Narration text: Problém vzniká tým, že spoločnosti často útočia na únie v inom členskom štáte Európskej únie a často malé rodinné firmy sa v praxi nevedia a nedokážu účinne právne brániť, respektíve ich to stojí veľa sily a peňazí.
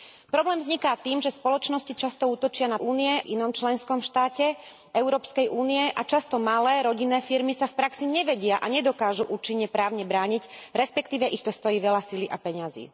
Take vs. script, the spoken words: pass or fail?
pass